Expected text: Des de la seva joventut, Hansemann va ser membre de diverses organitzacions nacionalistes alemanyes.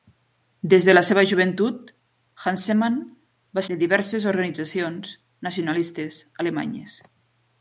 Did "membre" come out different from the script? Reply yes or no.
yes